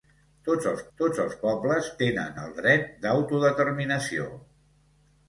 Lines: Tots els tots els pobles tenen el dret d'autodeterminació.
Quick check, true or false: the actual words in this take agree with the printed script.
true